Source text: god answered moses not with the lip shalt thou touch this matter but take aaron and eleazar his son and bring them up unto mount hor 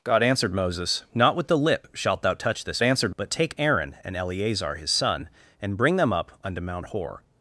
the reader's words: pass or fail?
fail